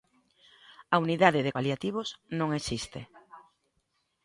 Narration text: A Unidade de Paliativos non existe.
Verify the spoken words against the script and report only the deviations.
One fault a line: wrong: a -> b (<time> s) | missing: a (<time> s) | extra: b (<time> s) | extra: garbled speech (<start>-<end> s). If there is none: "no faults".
no faults